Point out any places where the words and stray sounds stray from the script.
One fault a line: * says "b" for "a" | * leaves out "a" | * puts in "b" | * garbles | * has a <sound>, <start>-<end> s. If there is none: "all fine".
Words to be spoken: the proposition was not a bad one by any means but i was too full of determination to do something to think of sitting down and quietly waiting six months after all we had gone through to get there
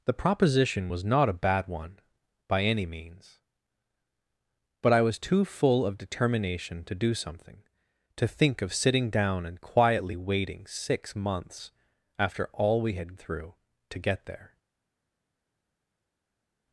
* leaves out "gone"